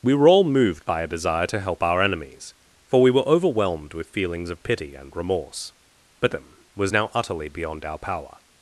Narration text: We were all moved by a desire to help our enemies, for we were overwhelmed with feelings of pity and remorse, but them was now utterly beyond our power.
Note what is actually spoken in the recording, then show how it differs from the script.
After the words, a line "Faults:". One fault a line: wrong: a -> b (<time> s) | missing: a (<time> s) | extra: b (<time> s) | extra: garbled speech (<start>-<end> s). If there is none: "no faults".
We were all moved by a desire to help our enemies, for we were overwhelmed with feelings of pity and remorse, but them was now utterly beyond our power.
Faults:
no faults